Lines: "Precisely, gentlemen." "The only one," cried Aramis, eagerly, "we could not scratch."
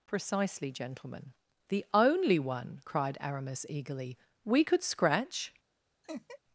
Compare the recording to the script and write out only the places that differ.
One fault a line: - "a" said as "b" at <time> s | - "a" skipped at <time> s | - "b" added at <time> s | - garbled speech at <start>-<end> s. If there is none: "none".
- "not" skipped at 4.8 s